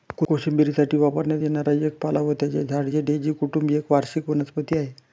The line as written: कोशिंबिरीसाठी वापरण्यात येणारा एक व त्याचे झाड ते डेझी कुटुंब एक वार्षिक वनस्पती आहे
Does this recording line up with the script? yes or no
no